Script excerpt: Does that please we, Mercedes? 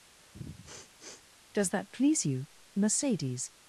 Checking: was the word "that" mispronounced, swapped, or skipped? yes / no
no